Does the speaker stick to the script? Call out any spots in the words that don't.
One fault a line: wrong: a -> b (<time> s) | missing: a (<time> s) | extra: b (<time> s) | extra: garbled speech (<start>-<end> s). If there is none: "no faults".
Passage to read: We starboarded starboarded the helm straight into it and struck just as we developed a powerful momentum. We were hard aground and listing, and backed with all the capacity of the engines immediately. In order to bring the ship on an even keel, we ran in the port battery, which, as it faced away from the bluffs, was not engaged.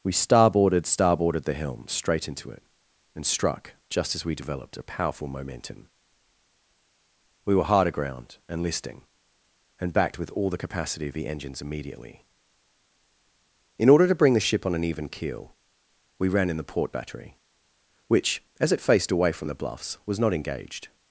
no faults